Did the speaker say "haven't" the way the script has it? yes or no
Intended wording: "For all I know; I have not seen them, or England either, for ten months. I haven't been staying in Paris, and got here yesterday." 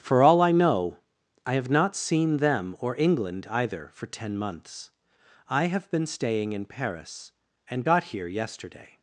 no